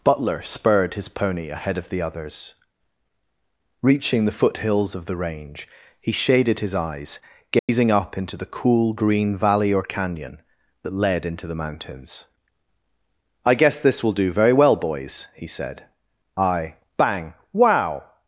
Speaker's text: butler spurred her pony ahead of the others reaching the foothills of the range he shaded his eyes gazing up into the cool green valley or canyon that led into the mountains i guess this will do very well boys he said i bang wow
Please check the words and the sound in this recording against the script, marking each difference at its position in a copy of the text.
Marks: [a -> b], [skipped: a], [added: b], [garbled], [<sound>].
butler spurred [her -> his] pony ahead of the others reaching the foothills of the range he shaded his eyes gazing [dropout] up into the cool green valley or canyon that led into the mountains i guess this will do very well boys he said i bang wow